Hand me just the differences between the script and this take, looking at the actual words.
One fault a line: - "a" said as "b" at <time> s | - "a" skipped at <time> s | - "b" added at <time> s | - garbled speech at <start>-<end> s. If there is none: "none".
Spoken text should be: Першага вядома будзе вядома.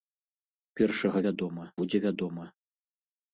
none